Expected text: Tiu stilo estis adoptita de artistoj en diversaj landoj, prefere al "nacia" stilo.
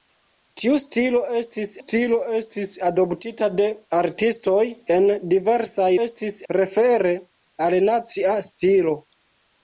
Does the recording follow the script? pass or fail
fail